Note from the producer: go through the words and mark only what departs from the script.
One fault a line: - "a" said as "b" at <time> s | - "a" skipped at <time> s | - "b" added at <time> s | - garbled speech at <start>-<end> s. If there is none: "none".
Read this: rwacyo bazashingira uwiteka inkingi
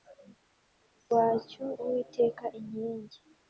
- "bazashingira" skipped at 1.6 s